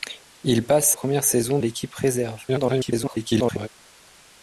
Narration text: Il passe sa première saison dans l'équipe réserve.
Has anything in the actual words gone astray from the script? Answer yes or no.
yes